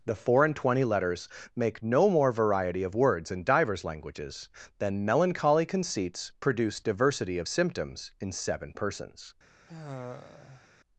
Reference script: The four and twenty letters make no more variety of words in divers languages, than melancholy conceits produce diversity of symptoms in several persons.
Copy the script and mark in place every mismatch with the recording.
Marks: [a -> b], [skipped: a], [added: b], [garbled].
The four and twenty letters make no more variety of words in divers languages, than melancholy conceits produce diversity of symptoms in [several -> seven] persons.